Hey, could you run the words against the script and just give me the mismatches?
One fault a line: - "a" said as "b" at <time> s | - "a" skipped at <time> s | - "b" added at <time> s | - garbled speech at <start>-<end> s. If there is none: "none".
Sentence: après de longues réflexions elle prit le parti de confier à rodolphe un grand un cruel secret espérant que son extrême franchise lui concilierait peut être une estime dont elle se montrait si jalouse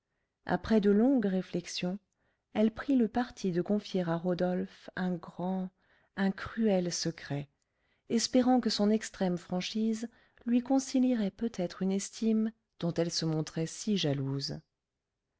none